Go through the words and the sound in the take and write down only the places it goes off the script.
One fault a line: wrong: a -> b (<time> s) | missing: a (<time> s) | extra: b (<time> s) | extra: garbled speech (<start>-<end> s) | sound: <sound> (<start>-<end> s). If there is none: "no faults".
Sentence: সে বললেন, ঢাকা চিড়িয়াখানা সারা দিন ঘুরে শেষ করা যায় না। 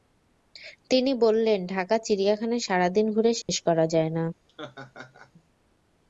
wrong: সে -> তিনি (0.9 s)
sound: dropout (3.4-3.5 s)
sound: laugh (4.5-5.3 s)